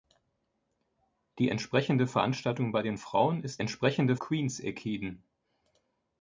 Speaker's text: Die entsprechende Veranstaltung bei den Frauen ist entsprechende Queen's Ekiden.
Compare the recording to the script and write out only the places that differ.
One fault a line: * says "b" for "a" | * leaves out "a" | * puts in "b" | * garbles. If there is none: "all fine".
all fine